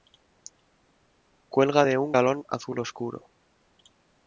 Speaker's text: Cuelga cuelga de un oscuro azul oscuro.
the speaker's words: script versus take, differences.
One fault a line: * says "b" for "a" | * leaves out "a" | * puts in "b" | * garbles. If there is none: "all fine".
* leaves out "cuelga"
* says "galón" for "oscuro"